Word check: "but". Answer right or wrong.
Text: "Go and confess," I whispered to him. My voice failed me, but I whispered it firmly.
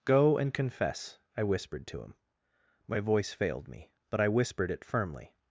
right